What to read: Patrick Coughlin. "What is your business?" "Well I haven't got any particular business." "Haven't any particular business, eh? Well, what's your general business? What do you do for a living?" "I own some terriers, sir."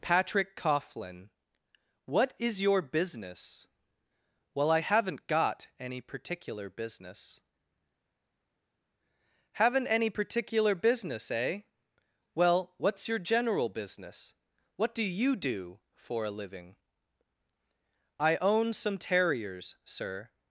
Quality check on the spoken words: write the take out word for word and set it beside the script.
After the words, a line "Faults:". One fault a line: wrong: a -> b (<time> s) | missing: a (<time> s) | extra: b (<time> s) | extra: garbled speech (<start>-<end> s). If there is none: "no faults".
Patrick Coughlin. "What is your business?" "Well I haven't got any particular business." "Haven't any particular business, eh? Well, what's your general business? What do you do for a living?" "I own some terriers, sir."
Faults:
no faults